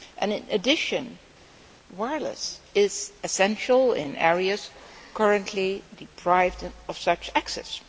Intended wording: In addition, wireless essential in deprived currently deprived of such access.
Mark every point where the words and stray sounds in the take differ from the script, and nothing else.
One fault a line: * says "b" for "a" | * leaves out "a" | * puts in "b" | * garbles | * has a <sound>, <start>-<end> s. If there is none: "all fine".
* puts in "is"
* says "areas" for "deprived"